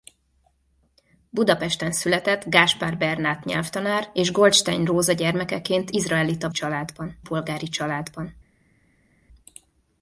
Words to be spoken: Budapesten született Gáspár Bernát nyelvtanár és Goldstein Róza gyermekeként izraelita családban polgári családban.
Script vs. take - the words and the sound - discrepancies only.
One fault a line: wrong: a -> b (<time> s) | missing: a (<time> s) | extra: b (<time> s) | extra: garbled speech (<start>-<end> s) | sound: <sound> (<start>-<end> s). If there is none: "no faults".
no faults